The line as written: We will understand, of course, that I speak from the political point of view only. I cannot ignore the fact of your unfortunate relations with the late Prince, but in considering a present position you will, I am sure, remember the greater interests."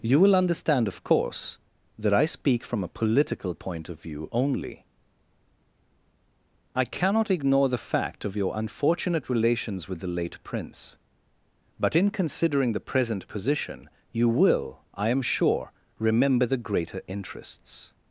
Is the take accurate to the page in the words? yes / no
no